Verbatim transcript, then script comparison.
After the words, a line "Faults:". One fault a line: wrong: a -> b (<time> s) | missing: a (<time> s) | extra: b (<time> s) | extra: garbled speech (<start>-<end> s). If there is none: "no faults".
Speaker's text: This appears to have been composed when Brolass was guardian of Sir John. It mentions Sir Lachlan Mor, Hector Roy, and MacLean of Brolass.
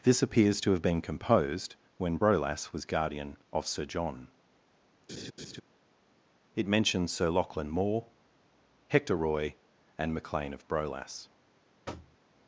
This appears to have been composed when Brolass was guardian of Sir John. It mentions Sir Lachlan Mor, Hector Roy, and MacLean of Brolass.
Faults:
no faults